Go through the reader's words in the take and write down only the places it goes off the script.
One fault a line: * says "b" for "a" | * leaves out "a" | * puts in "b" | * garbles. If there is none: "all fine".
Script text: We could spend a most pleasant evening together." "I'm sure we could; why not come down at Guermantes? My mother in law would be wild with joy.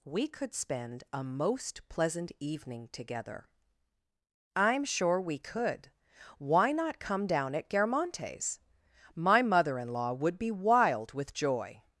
all fine